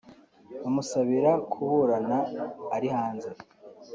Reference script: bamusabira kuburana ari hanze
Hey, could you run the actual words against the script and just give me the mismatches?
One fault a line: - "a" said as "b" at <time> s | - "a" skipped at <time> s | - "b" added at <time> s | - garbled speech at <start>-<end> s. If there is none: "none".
none